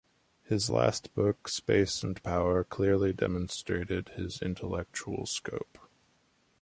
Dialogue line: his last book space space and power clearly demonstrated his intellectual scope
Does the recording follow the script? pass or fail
fail